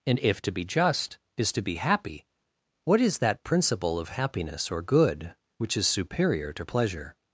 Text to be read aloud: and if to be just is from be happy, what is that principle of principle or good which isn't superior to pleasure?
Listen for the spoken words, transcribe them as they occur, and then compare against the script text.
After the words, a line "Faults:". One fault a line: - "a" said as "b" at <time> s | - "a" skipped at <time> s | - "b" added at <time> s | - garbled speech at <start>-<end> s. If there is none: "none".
and if to be just is to be happy, what is that principle of happiness or good which is superior to pleasure?
Faults:
- "from" said as "to" at 1.5 s
- "principle" said as "happiness" at 4.1 s
- "isn't" said as "is" at 5.8 s